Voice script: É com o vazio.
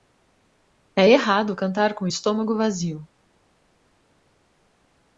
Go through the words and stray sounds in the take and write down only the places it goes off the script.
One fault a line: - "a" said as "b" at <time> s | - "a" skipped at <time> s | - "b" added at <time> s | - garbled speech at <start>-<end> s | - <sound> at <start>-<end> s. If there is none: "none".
- "errado cantar" added at 1.1 s
- "estômago" added at 2.0 s